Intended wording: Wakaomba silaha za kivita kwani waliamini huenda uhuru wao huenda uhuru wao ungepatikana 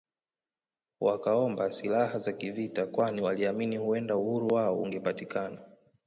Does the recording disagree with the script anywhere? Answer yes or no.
yes